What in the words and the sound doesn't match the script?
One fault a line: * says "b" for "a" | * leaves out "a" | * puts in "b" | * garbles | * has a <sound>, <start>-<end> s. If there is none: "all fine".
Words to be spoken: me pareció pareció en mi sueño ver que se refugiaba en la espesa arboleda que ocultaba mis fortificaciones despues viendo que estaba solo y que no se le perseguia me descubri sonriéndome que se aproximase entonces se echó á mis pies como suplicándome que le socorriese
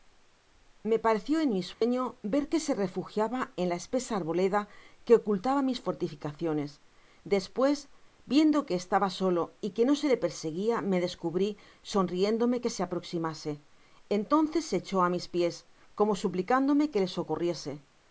* leaves out "pareció"
* has a dropout, 1.7-1.8 s